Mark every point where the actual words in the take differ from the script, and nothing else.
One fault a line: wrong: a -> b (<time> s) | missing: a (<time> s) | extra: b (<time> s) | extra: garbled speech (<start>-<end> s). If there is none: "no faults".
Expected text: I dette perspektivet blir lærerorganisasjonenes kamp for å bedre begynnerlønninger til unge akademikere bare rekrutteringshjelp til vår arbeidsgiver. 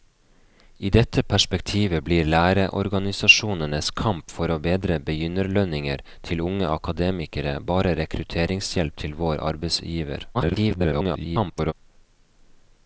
extra: garbled speech (10.3-11.7 s)